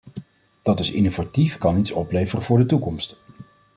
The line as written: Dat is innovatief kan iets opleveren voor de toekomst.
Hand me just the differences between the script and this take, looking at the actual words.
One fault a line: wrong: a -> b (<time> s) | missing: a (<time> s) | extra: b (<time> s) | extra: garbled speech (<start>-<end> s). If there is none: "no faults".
no faults